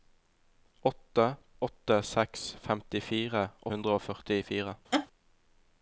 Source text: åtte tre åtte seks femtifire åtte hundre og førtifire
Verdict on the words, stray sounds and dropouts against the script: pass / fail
fail